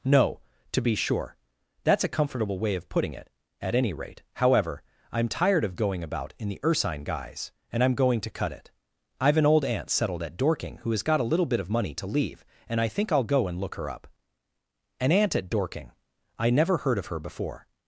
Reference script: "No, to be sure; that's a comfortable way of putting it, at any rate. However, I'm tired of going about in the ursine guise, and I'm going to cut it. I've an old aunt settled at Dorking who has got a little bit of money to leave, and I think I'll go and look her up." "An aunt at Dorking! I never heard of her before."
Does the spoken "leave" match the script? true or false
true